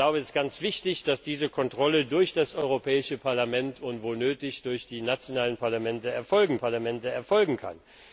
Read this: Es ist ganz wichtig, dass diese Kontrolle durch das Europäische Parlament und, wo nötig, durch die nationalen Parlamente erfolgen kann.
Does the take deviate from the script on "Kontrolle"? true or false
false